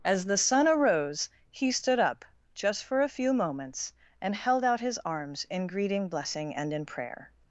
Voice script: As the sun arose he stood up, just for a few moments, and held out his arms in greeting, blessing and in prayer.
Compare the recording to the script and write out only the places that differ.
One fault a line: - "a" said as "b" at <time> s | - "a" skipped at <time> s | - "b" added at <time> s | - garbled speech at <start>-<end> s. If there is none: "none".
none